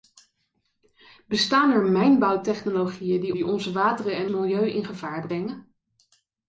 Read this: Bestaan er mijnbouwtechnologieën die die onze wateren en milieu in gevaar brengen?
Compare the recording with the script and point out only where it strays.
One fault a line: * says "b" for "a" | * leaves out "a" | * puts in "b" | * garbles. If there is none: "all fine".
all fine